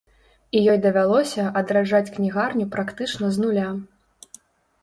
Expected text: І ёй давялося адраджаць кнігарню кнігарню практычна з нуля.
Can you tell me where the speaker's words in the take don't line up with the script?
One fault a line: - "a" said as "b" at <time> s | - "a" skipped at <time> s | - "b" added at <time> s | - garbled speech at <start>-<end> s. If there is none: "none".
- "кнігарню" skipped at 2.7 s